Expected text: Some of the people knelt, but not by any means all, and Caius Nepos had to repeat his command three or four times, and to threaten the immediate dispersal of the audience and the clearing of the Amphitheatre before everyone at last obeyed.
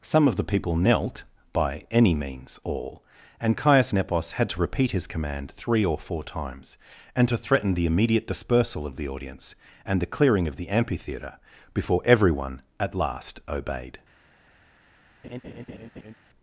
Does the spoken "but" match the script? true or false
false